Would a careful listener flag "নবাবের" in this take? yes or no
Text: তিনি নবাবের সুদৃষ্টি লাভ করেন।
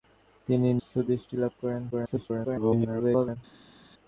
yes